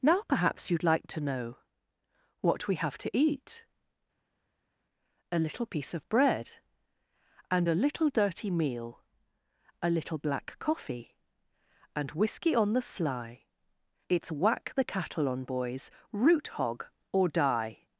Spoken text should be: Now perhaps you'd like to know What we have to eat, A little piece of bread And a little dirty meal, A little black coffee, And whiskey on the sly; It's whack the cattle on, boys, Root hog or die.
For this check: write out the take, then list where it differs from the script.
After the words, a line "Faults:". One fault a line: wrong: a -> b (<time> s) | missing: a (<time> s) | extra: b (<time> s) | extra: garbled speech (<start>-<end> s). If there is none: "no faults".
Now perhaps you'd like to know What we have to eat, A little piece of bread And a little dirty meal, A little black coffee, And whiskey on the sly; It's whack the cattle on, boys, Root hog or die.
Faults:
no faults